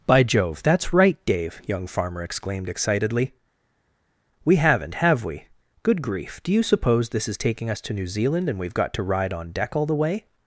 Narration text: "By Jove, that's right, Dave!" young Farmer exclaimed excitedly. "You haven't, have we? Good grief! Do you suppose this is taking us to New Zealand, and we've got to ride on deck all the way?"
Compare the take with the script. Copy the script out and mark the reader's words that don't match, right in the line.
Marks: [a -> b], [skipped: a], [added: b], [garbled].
"By Jove, that's right, Dave!" young Farmer exclaimed excitedly. ["You -> We] haven't, have we? Good grief! Do you suppose this is taking us to New Zealand, and we've got to ride on deck all the way?"